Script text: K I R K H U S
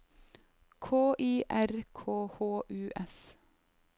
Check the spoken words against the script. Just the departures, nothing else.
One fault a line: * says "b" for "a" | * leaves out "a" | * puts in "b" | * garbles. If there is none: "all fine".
all fine